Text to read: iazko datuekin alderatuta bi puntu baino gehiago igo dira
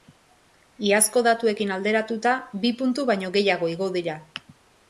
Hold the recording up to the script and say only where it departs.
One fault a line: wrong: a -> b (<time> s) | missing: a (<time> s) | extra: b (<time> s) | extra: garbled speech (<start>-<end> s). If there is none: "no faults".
no faults